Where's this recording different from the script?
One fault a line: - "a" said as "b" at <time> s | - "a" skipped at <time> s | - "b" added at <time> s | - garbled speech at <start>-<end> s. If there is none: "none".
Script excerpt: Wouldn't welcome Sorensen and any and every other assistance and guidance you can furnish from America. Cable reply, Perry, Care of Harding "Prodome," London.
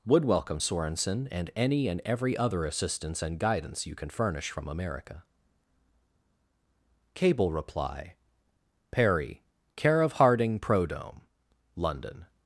- "Wouldn't" said as "Would" at 0.0 s